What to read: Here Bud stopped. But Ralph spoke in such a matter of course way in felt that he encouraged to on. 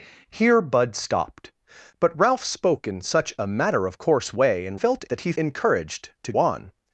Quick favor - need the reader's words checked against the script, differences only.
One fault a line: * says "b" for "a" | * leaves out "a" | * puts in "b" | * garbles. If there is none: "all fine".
all fine